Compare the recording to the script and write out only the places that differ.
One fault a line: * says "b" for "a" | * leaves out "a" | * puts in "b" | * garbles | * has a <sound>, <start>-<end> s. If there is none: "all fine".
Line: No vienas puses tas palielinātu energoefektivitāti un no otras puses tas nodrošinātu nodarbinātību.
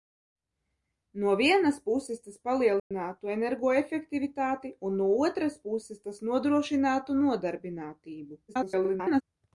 * has a dropout, 2.8-2.9 s
* garbles